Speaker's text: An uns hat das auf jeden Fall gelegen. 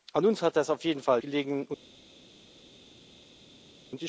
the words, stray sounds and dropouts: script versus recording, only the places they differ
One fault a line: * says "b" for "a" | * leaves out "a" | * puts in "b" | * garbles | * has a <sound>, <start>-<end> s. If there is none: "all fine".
all fine